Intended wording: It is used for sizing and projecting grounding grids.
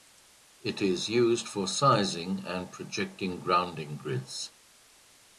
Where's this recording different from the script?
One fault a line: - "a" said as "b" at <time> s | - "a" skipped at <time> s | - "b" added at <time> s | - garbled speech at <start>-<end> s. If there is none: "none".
none